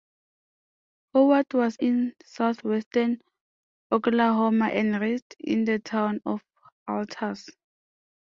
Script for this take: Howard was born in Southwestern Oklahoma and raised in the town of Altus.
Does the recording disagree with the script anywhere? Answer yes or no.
yes